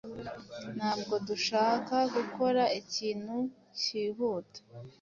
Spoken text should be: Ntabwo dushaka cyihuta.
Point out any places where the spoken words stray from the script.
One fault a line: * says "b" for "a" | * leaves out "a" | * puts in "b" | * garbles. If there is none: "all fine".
* puts in "gukora ikintu"